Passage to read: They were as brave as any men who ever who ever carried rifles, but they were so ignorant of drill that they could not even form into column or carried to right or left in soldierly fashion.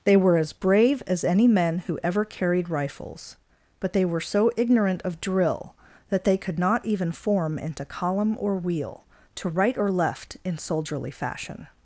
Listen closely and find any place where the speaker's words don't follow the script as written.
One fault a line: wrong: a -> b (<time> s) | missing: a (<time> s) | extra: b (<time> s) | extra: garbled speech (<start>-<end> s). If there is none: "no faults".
missing: who ever (2.2 s)
wrong: carried -> wheel (8.6 s)